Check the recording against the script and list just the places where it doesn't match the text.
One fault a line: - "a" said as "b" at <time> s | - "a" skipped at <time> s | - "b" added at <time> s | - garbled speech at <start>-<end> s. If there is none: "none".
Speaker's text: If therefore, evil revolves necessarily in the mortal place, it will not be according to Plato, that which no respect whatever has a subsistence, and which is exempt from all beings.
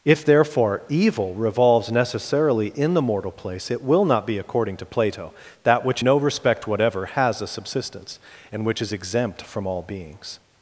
none